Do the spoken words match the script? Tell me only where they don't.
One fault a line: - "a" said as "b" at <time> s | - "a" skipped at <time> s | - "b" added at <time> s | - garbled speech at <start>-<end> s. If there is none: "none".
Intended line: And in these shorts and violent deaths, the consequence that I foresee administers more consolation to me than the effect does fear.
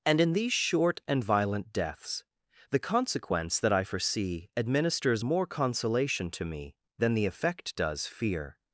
- "shorts" said as "short" at 0.5 s